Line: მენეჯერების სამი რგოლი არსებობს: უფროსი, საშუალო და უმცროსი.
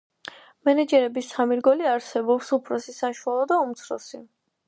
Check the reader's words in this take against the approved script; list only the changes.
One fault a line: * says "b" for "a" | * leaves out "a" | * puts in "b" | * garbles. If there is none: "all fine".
all fine